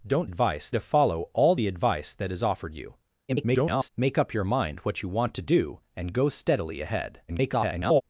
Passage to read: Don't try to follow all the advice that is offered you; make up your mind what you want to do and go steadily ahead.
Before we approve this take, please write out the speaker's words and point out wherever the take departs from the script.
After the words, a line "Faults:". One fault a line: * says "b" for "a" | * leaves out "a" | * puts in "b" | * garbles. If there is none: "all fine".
Don't advice to follow all the advice that is offered you; [garbled] make up your mind what you want to do and go steadily ahead. [garbled]
Faults:
* says "advice" for "try"
* garbles
* garbles